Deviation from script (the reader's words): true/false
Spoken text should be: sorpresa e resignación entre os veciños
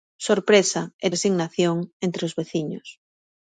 false